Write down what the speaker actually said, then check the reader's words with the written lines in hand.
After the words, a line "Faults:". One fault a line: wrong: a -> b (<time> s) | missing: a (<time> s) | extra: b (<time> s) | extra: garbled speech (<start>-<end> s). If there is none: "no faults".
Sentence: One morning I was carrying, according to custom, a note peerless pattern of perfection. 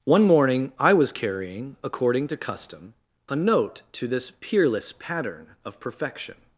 One morning I was carrying, according to custom, a note to this peerless pattern of perfection.
Faults:
extra: to this (3.9 s)